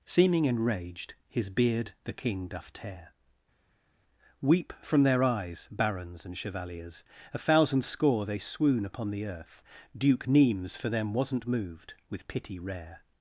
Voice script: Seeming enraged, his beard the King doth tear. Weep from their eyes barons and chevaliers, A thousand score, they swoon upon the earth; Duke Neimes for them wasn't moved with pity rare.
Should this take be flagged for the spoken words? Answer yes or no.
no